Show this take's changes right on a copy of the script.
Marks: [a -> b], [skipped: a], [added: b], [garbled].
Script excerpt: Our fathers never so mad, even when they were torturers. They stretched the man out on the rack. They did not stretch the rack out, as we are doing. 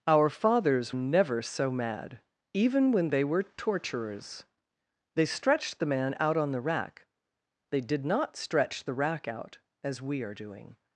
Our fathers never so mad, even when they were torturers. They stretched the man out on the rack. They did not stretch the rack out, as we are doing.